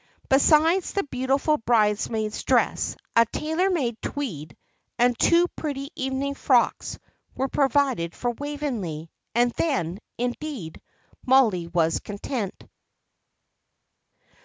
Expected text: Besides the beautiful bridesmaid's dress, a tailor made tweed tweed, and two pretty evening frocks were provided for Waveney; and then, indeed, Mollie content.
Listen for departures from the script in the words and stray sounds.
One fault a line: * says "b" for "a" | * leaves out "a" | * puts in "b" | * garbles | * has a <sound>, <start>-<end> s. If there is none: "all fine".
* leaves out "tweed"
* puts in "was"